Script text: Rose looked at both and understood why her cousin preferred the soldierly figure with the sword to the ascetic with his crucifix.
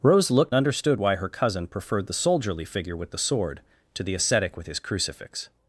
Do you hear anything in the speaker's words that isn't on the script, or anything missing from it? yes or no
yes